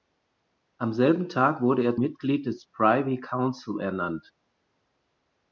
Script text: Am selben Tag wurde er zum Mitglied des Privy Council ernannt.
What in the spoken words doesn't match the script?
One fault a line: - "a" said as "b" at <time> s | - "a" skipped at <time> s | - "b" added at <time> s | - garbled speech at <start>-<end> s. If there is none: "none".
- "zum" skipped at 1.9 s